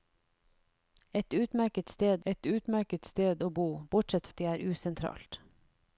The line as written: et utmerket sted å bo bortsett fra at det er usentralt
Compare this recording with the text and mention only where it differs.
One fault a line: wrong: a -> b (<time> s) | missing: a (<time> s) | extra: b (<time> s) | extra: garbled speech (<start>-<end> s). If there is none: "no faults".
extra: et utmerket sted (2.2 s)
missing: fra (4.3 s)